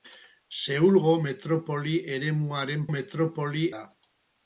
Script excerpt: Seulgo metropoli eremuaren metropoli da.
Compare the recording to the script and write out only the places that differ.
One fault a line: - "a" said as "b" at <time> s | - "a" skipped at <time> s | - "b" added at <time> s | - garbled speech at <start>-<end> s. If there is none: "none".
none